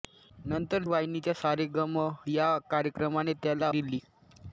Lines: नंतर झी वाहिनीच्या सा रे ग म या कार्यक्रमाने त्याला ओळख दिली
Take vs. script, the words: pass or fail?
fail